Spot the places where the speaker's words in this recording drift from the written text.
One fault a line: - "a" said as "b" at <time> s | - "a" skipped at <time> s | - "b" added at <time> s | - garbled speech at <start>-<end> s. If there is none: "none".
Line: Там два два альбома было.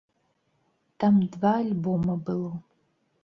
- "два" skipped at 1.6 s